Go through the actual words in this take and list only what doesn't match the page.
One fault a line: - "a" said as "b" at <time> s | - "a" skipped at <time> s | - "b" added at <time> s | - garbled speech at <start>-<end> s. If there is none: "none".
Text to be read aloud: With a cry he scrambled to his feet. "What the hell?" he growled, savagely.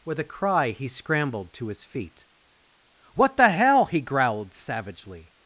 none